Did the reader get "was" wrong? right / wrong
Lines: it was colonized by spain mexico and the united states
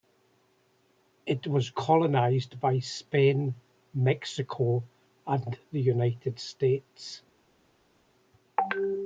right